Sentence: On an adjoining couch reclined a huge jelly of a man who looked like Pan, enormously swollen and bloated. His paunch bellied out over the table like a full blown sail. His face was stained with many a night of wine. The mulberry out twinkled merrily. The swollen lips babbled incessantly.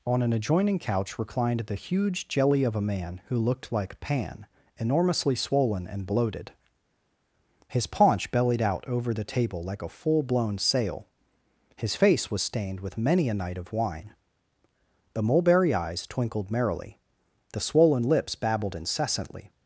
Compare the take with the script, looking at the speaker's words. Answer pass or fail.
fail